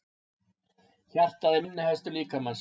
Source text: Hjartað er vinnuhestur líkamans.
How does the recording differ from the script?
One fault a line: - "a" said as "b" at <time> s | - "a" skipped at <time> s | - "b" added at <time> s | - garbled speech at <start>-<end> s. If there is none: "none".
none